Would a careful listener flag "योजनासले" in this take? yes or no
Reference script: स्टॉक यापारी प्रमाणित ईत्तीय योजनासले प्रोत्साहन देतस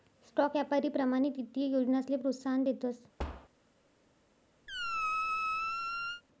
no